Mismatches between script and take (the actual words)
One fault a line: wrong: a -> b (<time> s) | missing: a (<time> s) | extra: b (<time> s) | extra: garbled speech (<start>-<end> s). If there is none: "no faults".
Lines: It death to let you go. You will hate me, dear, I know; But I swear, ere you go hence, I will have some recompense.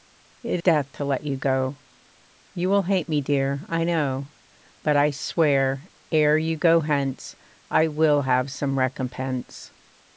no faults